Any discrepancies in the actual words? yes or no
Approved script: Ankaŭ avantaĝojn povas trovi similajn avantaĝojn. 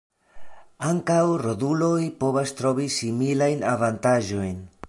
yes